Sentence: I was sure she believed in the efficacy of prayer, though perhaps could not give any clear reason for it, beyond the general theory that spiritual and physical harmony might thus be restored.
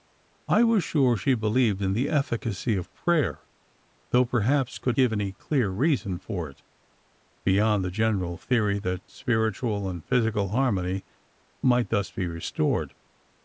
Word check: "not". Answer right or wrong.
wrong